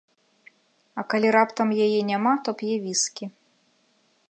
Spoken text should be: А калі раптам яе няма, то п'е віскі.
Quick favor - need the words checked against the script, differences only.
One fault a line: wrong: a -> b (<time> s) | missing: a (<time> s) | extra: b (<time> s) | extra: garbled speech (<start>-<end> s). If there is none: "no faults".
no faults